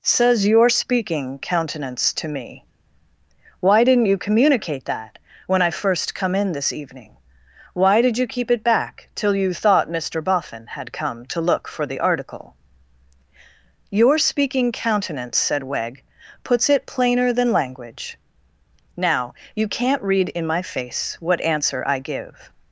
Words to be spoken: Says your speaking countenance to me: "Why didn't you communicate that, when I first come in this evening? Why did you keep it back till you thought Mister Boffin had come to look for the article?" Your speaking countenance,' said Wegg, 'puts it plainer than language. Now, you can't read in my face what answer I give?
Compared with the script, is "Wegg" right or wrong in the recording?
right